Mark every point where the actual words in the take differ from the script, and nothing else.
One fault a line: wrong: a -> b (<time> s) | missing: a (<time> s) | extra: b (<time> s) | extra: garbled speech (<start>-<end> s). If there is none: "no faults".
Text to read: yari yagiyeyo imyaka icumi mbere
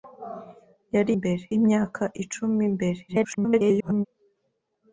wrong: yagiyeyo -> mbere (1.2 s)
extra: garbled speech (3.1-4.1 s)